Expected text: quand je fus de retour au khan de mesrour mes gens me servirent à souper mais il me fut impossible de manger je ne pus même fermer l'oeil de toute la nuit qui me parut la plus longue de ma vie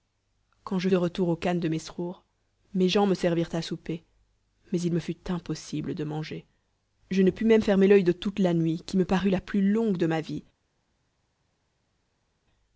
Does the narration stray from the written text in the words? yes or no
yes